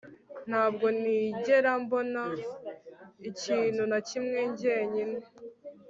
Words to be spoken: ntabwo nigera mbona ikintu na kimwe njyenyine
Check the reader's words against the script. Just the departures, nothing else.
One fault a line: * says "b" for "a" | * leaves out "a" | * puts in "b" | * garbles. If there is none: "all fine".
all fine